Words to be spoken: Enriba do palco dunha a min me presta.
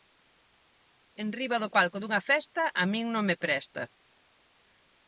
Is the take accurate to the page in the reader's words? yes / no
no